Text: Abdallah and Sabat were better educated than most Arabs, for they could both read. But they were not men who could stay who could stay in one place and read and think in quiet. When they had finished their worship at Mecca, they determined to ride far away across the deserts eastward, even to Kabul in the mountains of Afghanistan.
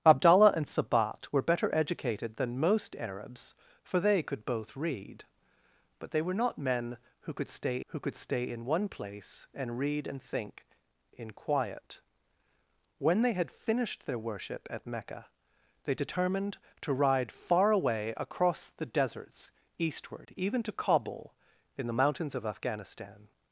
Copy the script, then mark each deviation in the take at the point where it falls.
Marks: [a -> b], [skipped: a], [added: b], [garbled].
Abdallah and Sabat were better educated than most Arabs, for they could both read. But they were not men who could stay who could stay in one place and read and think in quiet. When they had finished their worship at Mecca, they determined to ride far away across the deserts eastward, even to Kabul in the mountains of Afghanistan.